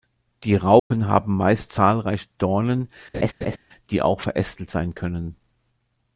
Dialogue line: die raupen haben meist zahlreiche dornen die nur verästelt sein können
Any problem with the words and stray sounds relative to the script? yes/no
yes